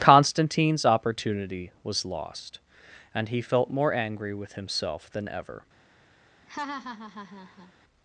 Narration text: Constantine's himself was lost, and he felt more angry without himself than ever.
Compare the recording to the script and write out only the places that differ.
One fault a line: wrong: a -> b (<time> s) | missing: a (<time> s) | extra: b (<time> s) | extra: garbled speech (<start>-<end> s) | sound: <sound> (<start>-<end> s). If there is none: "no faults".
wrong: himself -> opportunity (0.8 s)
wrong: without -> with (4.3 s)
sound: laugh (6.5-7.7 s)